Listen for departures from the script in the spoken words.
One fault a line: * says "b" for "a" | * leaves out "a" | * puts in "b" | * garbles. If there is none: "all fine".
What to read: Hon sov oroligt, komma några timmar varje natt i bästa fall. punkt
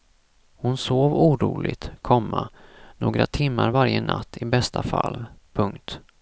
all fine